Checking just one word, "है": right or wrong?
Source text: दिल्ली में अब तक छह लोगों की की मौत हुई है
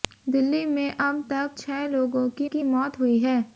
right